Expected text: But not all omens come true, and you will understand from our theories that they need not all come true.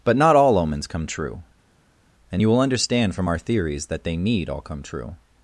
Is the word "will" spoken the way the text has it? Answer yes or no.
yes